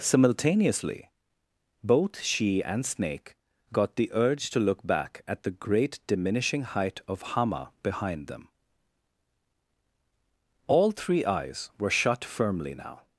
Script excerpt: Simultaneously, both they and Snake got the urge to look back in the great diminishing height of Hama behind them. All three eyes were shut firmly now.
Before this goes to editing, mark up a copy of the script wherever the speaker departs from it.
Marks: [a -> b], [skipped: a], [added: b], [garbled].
Simultaneously, both [they -> she] and Snake got the urge to look back [in -> at] the great diminishing height of Hama behind them. All three eyes were shut firmly now.